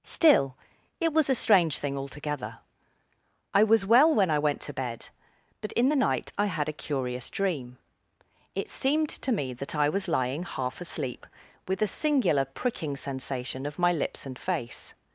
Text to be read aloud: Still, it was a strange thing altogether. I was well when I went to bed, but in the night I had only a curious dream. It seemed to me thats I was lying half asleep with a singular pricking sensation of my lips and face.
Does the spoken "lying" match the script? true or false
true